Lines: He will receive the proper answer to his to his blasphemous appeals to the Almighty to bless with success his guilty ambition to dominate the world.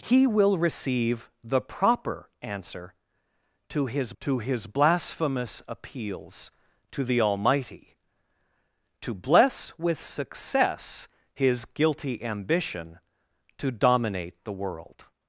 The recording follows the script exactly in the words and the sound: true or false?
true